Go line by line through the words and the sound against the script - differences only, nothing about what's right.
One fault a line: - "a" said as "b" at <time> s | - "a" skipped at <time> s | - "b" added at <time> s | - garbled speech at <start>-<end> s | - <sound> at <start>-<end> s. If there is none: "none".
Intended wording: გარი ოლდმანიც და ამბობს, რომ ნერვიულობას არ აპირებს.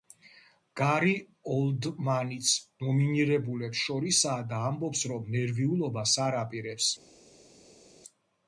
- "ნომინირებულებს შორისაა" added at 2.9 s